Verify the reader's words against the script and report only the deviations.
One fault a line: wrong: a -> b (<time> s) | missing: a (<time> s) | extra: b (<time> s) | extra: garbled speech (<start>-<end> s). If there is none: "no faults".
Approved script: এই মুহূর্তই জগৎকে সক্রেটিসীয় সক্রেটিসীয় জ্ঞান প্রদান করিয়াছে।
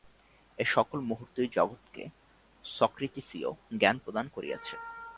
extra: সকল (0.7 s)
missing: সক্রেটিসীয় (3.5 s)